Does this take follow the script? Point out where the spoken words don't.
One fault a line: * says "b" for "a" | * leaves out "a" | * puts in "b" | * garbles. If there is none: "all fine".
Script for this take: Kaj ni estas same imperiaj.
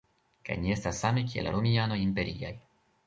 * puts in "kiel romianoj"